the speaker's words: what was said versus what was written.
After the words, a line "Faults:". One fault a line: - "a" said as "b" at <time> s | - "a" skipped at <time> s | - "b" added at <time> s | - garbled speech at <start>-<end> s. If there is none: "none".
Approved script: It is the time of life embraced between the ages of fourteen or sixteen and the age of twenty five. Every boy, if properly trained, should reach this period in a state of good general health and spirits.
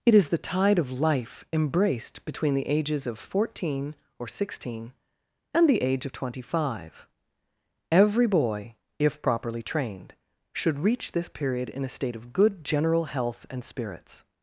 It is the tide of life embraced between the ages of fourteen or sixteen and the age of twenty five. Every boy, if properly trained, should reach this period in a state of good general health and spirits.
Faults:
- "time" said as "tide" at 0.4 s